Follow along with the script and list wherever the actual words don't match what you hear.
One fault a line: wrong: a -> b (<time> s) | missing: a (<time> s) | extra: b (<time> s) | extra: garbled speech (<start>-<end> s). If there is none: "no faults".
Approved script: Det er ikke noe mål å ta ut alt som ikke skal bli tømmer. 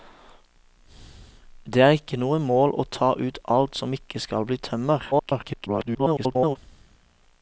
extra: garbled speech (5.1-6.6 s)